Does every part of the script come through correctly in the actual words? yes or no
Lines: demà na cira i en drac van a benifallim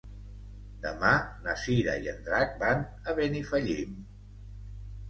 yes